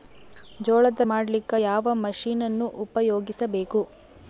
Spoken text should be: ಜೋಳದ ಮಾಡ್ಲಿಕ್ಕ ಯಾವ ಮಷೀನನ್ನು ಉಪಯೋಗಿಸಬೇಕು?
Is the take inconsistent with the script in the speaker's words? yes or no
no